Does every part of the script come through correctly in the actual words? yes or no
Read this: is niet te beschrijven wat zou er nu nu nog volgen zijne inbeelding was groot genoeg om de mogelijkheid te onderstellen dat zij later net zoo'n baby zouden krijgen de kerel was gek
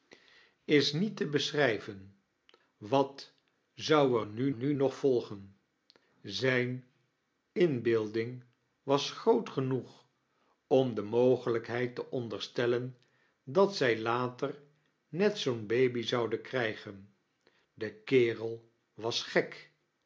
yes